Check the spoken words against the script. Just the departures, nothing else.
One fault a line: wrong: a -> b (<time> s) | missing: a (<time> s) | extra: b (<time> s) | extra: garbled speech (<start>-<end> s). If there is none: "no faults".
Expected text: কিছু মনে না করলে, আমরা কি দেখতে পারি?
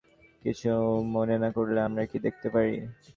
no faults